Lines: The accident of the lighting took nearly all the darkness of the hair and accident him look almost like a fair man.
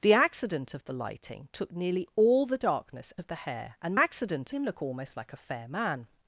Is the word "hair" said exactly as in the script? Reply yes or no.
yes